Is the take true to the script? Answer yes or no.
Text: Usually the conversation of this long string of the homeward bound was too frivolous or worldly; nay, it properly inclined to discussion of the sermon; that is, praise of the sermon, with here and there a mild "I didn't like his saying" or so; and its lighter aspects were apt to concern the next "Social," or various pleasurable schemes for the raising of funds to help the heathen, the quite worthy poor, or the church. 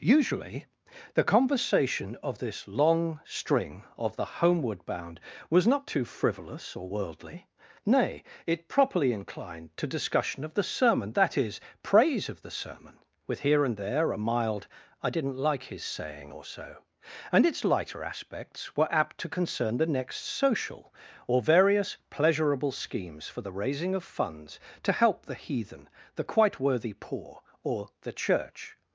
no